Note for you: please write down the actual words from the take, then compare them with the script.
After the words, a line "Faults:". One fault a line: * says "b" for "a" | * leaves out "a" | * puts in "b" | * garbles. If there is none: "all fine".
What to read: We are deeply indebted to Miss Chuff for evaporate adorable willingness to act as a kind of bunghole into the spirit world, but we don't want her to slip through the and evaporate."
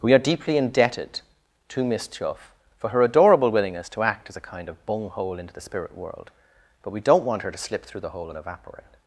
We are deeply indebted to Miss Chuff for her adorable willingness to act as a kind of bunghole into the spirit world, but we don't want her to slip through the hole and evaporate."
Faults:
* says "her" for "evaporate"
* puts in "hole"